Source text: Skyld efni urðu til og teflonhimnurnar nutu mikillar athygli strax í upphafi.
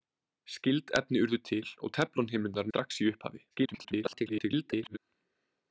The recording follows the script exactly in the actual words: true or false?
false